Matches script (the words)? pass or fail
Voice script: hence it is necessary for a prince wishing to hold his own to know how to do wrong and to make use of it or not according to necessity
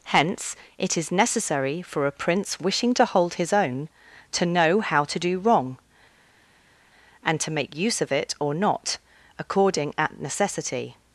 fail